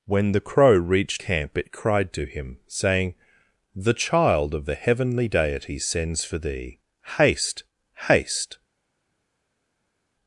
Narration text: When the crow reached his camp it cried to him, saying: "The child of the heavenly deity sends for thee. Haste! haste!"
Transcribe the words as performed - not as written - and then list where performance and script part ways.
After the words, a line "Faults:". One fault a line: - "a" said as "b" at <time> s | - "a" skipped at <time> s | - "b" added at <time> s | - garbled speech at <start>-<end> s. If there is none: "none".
When the crow reached camp it cried to him, saying: "The child of the heavenly deity sends for thee. Haste! haste!"
Faults:
- "his" skipped at 1.2 s